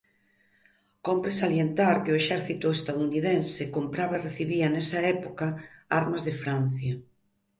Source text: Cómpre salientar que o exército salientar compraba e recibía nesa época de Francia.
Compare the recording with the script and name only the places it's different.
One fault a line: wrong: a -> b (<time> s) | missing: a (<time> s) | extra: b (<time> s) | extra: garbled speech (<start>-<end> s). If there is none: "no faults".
wrong: salientar -> estadounidense (2.8 s)
extra: armas (6.0 s)